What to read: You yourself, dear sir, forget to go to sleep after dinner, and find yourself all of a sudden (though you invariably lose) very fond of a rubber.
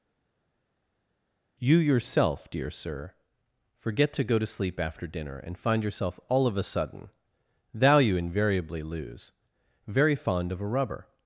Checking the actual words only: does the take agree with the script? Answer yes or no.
no